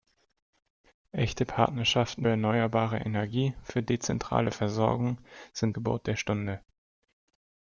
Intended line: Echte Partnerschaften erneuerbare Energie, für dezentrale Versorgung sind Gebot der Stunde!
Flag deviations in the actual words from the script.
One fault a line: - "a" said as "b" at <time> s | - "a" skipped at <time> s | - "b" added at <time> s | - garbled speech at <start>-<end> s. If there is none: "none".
none